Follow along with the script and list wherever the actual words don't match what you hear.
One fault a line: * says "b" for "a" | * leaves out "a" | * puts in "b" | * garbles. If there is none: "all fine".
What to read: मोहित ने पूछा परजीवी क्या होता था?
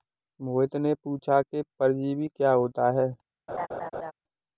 * puts in "कि"
* says "है" for "था"